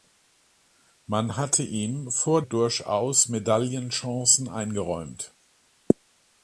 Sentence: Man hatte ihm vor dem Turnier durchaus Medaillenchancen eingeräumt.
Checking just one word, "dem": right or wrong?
wrong